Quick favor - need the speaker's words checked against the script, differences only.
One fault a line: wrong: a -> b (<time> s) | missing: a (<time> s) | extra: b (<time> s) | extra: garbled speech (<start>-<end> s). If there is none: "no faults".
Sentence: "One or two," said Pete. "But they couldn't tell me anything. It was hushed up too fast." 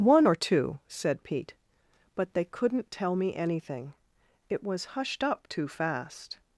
no faults